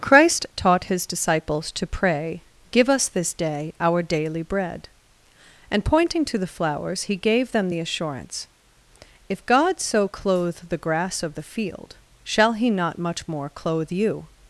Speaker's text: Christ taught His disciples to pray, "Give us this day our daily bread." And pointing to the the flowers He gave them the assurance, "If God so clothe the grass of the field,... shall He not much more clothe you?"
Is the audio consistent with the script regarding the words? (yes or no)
no